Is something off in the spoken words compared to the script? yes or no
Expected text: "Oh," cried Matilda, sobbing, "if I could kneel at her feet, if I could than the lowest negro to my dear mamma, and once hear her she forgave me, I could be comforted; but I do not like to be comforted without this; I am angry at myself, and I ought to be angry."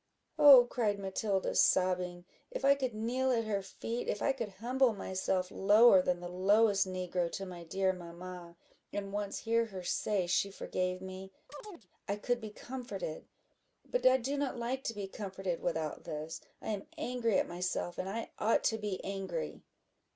yes